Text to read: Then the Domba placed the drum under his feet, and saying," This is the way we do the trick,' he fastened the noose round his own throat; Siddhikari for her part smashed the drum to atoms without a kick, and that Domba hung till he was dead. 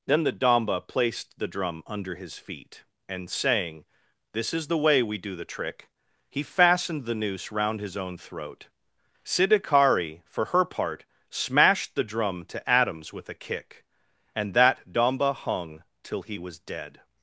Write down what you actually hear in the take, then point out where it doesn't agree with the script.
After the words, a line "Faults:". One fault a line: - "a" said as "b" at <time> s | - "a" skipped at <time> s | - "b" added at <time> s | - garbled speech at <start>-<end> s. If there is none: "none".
Then the Domba placed the drum under his feet, and saying," This is the way we do the trick,' he fastened the noose round his own throat; Siddhikari for her part smashed the drum to atoms with a kick, and that Domba hung till he was dead.
Faults:
- "without" said as "with" at 13.1 s